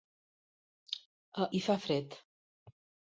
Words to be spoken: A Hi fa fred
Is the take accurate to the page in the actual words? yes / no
yes